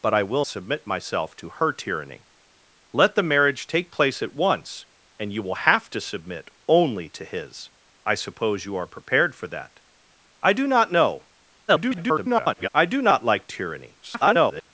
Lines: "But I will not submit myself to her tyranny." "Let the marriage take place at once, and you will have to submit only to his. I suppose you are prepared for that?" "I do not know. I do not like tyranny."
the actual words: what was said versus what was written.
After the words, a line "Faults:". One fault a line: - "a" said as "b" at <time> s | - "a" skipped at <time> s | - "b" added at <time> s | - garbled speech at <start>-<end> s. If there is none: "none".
"But I will submit myself to her tyranny." "Let the marriage take place at once, and you will have to submit only to his. I suppose you are prepared for that?" "I do not know. [garbled] I do not like tyranny." [garbled]
Faults:
- "not" skipped at 0.5 s
- garbled speech at 11.7-12.7 s
- garbled speech at 14.0-14.7 s